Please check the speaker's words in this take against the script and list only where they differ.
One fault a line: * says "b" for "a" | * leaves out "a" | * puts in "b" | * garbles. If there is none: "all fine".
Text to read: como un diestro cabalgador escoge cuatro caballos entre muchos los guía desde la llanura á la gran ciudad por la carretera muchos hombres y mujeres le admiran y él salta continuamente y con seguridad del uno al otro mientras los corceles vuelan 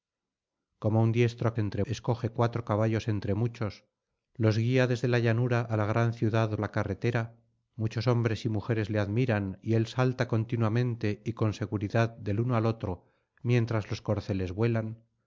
* says "entre" for "cabalgador"
* leaves out "por"